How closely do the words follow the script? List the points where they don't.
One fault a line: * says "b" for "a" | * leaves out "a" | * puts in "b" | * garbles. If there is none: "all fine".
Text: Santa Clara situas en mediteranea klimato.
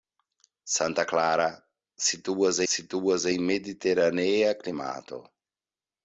* puts in "situas"